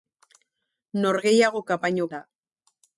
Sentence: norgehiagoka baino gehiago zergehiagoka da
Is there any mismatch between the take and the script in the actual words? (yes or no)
yes